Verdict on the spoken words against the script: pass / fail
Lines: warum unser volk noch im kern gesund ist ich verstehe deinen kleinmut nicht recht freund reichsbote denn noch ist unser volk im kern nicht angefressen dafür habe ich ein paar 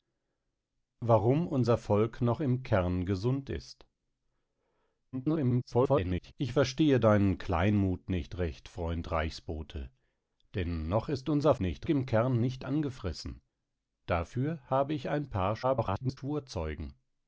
fail